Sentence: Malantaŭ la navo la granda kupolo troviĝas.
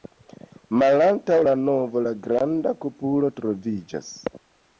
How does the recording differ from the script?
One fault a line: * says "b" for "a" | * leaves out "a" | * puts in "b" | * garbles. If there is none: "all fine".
all fine